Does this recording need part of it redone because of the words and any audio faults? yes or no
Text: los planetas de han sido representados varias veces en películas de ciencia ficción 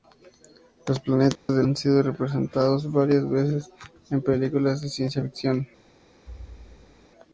yes